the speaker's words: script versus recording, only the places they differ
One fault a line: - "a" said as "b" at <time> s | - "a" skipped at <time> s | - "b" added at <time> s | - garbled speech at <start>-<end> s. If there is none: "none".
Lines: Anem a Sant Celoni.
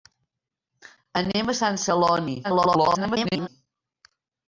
- garbled speech at 2.4-3.5 s